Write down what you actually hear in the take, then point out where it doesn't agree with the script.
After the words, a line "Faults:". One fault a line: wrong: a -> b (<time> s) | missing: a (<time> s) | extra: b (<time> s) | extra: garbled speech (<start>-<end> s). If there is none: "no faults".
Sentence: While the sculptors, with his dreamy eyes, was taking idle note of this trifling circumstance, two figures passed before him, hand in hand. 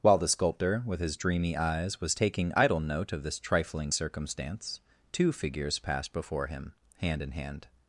While the sculptor, with his dreamy eyes, was taking idle note of this trifling circumstance, two figures passed before him, hand in hand.
Faults:
wrong: sculptors -> sculptor (0.3 s)